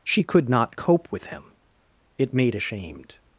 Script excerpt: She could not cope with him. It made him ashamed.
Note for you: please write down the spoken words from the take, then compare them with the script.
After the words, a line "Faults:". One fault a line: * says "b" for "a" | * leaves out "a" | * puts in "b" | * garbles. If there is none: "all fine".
She could not cope with him. It made ashamed.
Faults:
* leaves out "him"